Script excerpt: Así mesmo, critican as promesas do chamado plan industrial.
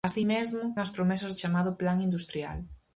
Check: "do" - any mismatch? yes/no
yes